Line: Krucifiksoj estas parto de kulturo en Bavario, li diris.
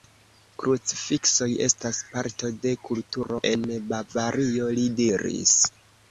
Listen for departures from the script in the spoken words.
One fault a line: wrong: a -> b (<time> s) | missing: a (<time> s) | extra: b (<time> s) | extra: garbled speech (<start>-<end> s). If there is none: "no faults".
no faults